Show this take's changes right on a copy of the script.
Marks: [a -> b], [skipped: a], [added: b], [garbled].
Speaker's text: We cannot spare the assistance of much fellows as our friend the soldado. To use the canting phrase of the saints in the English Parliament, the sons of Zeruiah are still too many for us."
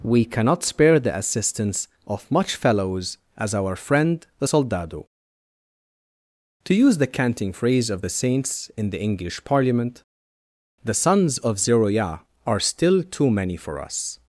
We cannot spare the assistance of much fellows as our friend the soldado. To use the canting phrase of the saints in the English Parliament, the sons of Zeruiah are still too many for us."